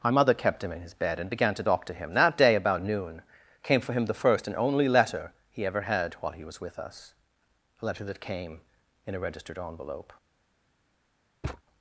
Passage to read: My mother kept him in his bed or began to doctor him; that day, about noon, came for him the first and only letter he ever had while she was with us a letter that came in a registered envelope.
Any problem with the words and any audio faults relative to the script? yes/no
yes